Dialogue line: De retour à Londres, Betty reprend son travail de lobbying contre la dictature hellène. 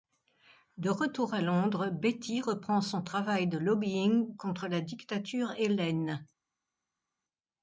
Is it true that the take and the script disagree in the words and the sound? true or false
false